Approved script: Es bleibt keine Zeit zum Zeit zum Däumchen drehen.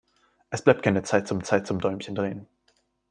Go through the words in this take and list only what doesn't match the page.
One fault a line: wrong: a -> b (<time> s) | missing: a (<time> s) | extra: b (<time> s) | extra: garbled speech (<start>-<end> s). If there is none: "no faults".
no faults